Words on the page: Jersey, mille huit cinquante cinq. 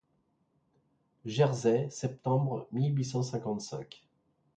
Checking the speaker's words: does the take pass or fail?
fail